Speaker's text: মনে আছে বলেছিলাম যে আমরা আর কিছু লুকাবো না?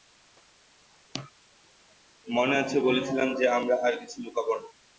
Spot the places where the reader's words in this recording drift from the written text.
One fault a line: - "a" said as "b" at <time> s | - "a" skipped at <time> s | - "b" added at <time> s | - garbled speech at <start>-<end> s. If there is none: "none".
none